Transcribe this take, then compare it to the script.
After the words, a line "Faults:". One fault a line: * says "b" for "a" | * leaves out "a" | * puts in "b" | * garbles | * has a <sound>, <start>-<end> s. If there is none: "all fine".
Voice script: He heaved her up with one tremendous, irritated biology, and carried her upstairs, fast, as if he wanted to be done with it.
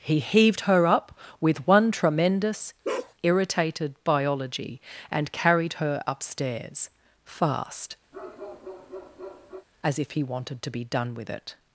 He heaved her up with one tremendous, irritated biology, and carried her upstairs, fast, as if he wanted to be done with it.
Faults:
* has a bark, 2.8-3.1 s
* has a bark, 8.1-9.7 s